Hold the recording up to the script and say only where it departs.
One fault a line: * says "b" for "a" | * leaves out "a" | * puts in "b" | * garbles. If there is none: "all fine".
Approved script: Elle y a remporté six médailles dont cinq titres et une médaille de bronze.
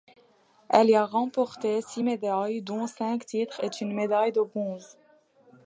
all fine